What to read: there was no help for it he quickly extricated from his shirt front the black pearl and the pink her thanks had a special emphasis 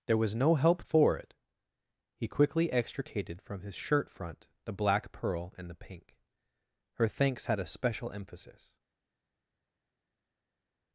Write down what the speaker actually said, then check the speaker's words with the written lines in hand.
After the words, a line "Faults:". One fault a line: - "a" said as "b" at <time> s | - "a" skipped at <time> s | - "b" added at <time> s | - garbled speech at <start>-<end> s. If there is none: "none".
there was no help for it he quickly extricated from his shirt front the black pearl and the pink her thanks had a special emphasis
Faults:
none